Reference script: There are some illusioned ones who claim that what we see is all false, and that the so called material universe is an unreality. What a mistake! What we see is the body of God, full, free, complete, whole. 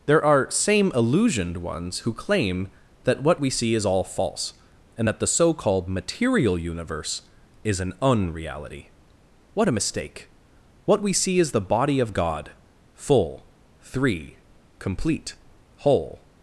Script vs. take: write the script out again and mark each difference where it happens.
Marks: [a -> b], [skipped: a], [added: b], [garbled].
There are [some -> same] illusioned ones who claim that what we see is all false, and that the so called material universe is an unreality. What a mistake! What we see is the body of God, full, [free, -> three] complete, whole.